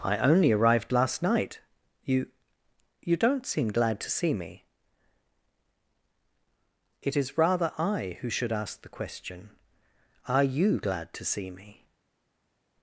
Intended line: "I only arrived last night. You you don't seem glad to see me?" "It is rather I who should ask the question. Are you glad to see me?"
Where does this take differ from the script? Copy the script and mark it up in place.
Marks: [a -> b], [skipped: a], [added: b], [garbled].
"I only arrived last night. You you don't seem glad to see me?" "It is rather I who should ask the question. Are you glad to see me?"